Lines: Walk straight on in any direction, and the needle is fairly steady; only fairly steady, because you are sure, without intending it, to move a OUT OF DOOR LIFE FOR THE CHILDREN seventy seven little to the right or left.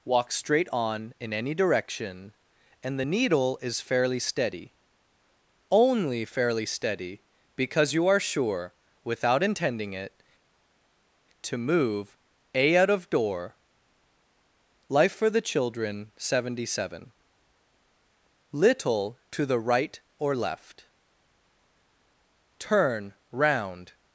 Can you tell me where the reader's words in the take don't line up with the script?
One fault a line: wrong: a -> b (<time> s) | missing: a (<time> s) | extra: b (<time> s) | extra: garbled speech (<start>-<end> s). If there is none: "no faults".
extra: Turn round (22.6 s)